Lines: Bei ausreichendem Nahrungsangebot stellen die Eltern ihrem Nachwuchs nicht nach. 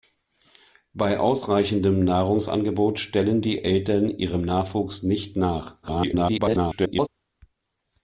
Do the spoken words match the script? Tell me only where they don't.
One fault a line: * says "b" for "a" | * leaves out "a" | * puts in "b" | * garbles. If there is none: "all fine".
* garbles